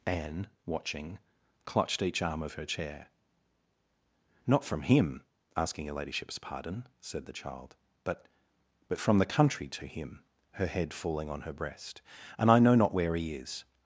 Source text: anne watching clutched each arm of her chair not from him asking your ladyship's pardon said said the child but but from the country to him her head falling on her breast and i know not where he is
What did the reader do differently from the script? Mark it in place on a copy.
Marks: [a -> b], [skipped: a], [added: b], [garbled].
anne watching clutched each arm of her chair not from him asking your ladyship's pardon said [skipped: said] the child but but from the country to him her head falling on her breast and i know not where he is